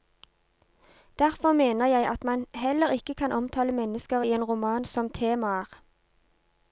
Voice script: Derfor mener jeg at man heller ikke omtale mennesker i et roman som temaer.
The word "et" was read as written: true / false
false